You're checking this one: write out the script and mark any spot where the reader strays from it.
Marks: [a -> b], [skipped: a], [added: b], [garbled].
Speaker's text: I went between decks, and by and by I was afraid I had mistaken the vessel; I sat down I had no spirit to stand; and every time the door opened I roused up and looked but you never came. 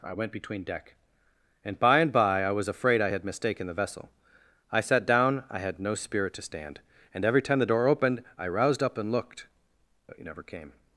I went between [decks, -> deck] and by and by I was afraid I had mistaken the vessel; I sat down I had no spirit to stand; and every time the door opened I roused up and looked but you never came.